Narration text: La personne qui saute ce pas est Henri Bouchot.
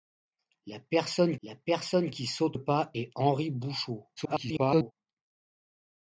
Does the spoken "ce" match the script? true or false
false